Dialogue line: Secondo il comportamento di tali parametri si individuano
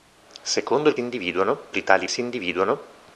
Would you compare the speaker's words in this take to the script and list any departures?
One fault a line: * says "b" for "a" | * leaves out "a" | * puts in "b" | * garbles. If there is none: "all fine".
* says "individuano" for "comportamento"
* leaves out "parametri"